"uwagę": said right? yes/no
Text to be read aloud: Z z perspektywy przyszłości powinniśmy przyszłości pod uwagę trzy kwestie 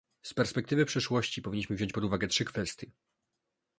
yes